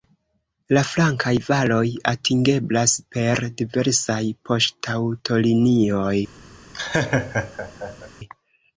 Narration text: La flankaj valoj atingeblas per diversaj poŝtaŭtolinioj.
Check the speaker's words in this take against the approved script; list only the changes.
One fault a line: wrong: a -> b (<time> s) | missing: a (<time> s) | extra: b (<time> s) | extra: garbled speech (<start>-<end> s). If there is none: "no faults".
no faults